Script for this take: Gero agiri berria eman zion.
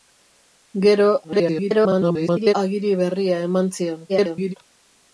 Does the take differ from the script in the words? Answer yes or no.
yes